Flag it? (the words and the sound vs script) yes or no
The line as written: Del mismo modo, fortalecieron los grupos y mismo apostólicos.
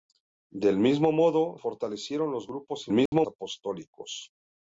yes